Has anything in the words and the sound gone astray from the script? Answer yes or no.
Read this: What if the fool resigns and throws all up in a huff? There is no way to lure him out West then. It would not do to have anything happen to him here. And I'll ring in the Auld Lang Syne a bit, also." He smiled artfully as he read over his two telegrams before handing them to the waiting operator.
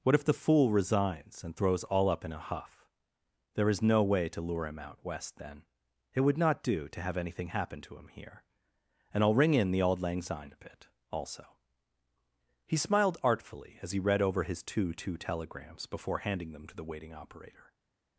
yes